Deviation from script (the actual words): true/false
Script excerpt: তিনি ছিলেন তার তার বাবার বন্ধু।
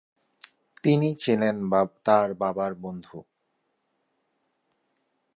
true